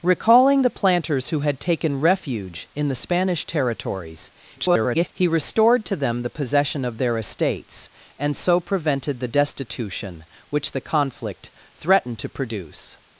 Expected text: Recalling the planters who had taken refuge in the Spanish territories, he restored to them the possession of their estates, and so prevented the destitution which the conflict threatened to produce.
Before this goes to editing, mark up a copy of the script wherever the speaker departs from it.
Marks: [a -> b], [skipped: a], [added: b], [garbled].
Recalling the planters who had taken refuge in the Spanish territories, [garbled] he restored to them the possession of their estates, and so prevented the destitution which the conflict threatened to produce.